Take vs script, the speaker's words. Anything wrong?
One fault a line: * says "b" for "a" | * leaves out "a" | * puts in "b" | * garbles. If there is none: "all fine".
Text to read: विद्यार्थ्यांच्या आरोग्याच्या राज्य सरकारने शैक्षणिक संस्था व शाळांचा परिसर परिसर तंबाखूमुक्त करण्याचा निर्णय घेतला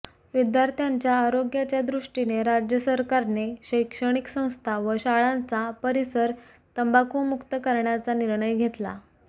* puts in "दृष्टीने"
* leaves out "परिसर"